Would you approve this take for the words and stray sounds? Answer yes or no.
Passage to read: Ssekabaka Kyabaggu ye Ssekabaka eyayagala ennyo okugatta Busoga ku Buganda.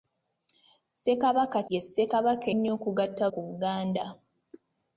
no